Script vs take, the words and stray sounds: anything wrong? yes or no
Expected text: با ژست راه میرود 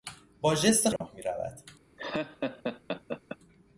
yes